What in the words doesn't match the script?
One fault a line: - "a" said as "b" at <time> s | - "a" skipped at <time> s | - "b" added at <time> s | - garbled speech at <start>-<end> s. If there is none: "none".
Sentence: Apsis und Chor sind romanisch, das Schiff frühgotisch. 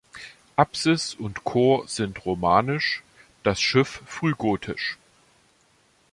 none